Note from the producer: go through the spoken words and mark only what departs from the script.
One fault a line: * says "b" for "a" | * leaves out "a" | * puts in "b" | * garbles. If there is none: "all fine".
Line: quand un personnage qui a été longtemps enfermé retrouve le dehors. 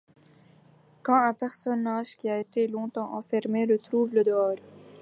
all fine